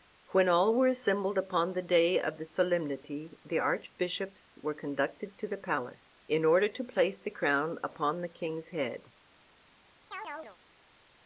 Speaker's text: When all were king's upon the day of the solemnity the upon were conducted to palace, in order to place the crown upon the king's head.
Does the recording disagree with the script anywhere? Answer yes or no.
yes